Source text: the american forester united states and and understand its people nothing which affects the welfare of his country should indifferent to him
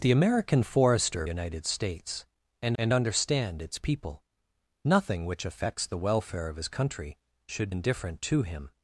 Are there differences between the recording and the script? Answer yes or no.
no